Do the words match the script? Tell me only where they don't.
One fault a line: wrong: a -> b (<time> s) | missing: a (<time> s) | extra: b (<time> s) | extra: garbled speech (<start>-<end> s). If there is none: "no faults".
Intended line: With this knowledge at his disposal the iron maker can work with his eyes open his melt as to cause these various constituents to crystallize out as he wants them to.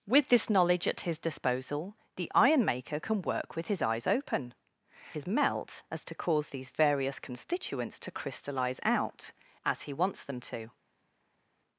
no faults